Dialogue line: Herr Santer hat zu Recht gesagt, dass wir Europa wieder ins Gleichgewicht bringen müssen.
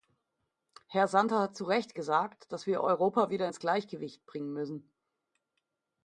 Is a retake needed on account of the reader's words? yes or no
no